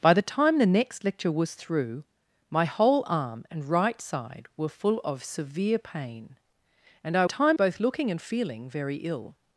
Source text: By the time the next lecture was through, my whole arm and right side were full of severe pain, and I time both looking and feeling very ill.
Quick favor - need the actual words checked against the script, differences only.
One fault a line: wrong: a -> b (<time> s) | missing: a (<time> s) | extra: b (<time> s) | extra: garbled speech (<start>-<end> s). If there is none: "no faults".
no faults